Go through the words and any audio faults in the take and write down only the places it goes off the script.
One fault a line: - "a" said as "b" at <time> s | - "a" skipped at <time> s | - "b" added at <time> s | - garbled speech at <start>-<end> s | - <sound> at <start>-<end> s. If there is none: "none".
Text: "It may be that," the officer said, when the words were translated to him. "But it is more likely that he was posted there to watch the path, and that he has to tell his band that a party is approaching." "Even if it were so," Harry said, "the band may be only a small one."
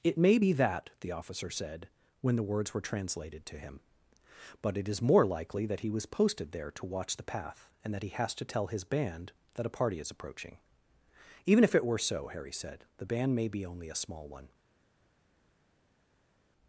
none